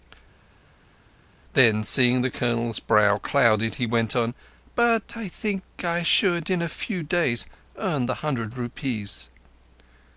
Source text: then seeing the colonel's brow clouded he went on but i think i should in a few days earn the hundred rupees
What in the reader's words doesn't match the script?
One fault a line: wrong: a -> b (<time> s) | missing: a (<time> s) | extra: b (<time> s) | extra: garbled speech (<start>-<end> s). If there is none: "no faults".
no faults